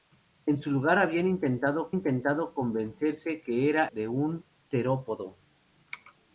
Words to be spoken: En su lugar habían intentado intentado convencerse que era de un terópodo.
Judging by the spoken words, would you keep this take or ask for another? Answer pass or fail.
pass